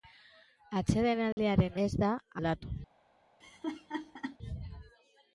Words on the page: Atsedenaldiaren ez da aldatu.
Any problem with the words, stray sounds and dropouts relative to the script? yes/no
yes